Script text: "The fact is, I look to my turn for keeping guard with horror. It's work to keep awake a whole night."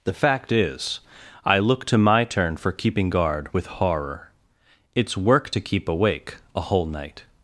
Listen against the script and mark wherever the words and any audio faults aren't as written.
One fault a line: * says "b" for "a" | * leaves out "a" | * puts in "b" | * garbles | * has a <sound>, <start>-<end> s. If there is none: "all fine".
all fine